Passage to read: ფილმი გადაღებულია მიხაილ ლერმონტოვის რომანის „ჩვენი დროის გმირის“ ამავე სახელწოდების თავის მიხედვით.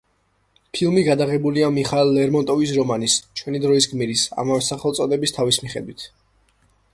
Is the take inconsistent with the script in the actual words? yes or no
no